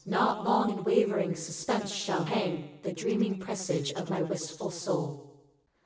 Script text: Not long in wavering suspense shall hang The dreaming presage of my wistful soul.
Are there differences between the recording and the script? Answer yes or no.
no